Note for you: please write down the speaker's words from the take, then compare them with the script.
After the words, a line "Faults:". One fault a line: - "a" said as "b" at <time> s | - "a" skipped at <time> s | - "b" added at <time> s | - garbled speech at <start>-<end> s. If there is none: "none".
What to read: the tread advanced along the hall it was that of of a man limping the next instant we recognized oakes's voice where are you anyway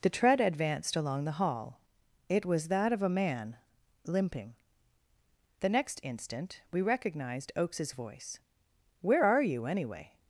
the tread advanced along the hall it was that of a man limping the next instant we recognized oakes's voice where are you anyway
Faults:
- "of" skipped at 3.0 s